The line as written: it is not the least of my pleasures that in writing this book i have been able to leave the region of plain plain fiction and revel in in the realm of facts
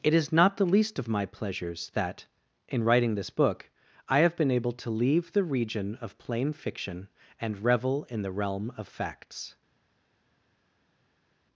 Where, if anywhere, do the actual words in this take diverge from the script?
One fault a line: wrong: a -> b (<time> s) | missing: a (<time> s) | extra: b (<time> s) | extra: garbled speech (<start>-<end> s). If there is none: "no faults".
missing: plain (6.5 s)
missing: in (8.2 s)